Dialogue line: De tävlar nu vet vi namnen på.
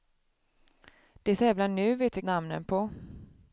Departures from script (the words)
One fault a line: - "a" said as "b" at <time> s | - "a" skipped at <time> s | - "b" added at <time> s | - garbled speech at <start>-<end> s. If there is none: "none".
none